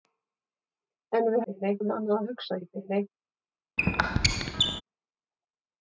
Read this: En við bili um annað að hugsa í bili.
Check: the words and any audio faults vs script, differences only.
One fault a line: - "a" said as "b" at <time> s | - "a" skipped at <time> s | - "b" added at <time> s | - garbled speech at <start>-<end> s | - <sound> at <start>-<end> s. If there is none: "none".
- squeak at 3.8-4.8 s